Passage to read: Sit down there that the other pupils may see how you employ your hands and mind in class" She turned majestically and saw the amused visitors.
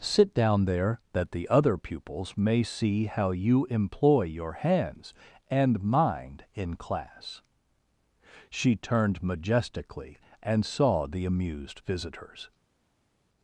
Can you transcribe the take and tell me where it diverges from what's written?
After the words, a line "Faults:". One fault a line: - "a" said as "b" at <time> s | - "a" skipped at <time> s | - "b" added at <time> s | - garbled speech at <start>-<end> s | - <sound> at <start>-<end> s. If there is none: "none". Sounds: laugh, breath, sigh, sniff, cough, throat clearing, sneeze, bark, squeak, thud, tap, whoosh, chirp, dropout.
Sit down there that the other pupils may see how you employ your hands and mind in class" She turned majestically and saw the amused visitors.
Faults:
none